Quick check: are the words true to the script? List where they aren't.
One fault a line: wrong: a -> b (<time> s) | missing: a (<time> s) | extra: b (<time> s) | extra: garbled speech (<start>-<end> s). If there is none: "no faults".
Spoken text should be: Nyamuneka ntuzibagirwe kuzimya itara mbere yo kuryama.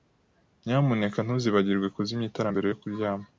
no faults